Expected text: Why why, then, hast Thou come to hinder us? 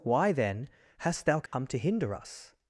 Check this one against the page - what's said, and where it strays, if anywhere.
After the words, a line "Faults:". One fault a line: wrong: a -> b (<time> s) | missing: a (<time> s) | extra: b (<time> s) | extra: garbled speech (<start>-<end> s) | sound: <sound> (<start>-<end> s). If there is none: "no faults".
Why, then, hast Thou come to hinder us?
Faults:
missing: why (0.3 s)
sound: dropout (1.5-1.5 s)